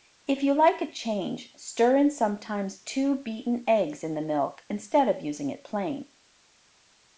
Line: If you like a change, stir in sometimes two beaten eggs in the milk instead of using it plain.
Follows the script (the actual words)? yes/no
yes